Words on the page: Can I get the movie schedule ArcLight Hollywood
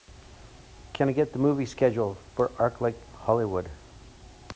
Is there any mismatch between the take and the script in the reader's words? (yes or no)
yes